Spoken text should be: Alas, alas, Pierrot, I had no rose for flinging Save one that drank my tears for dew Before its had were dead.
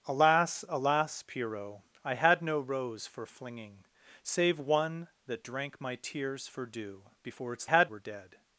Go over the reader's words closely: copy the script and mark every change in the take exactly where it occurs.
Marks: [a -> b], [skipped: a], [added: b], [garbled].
Alas, alas, Pierrot, I had no rose for flinging Save one that drank my tears for dew Before its had were dead.